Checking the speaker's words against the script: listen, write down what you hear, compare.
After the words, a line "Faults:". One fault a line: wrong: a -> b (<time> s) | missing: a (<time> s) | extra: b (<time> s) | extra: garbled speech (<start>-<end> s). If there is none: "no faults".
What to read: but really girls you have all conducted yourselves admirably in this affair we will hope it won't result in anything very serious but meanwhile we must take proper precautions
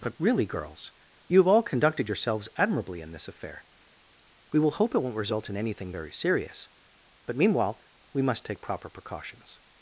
but really girls you have all conducted yourselves admirably in this affair we will hope it won't result in anything very serious but meanwhile we must take proper precautions
Faults:
no faults